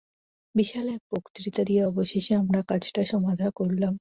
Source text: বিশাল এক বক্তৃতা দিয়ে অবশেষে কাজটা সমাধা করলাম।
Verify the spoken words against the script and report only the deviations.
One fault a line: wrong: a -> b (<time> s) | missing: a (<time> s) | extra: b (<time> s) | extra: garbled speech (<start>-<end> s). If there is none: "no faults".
extra: আমরা (2.4 s)